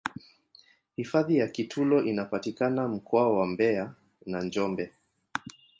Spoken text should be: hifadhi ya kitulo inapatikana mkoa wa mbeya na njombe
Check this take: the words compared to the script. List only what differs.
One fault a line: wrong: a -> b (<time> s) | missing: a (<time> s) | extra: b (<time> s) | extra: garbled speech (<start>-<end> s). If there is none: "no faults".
no faults